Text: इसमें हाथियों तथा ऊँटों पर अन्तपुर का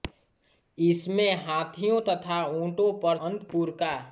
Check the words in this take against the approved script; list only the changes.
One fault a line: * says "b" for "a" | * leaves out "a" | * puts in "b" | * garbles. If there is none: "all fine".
all fine